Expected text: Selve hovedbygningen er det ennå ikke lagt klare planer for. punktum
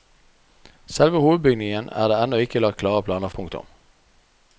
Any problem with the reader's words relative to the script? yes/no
yes